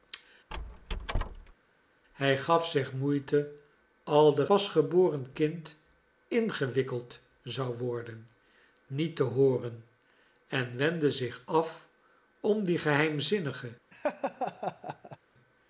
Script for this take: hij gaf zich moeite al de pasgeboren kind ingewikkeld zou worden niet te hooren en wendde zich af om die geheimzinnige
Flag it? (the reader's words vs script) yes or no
no